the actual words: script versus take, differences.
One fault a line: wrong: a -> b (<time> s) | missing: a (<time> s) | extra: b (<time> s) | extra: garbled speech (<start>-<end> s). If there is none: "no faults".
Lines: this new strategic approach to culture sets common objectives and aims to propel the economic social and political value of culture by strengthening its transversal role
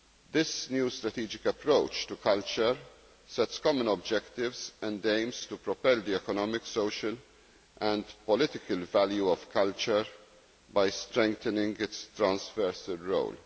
no faults